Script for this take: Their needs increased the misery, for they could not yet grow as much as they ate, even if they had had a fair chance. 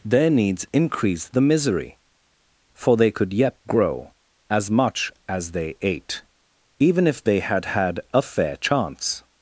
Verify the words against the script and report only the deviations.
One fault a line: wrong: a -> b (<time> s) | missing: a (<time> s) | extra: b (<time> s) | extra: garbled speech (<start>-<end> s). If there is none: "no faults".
missing: not (3.3 s)